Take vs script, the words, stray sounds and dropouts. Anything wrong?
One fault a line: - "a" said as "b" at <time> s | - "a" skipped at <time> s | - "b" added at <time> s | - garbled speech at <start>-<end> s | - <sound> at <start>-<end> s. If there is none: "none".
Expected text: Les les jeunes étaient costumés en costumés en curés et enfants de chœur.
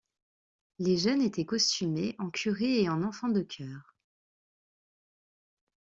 - "les" skipped at 1.0 s
- "costumés en" skipped at 2.3 s
- "en" added at 2.9 s